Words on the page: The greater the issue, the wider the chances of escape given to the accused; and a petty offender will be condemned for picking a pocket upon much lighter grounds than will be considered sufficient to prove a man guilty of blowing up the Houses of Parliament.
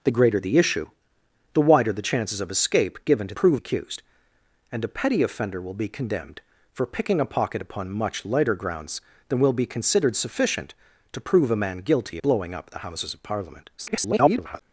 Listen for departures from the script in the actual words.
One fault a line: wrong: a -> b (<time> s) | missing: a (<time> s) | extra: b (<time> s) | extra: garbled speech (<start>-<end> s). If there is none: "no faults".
wrong: the -> prove (3.3 s)
missing: of (12.2 s)
extra: garbled speech (13.8-14.6 s)